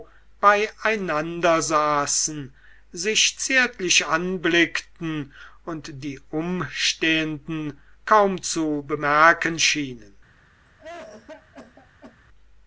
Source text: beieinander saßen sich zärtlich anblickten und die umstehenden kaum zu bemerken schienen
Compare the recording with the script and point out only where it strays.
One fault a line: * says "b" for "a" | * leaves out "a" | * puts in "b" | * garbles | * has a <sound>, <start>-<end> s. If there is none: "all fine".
* has a cough, 10.7-12.2 s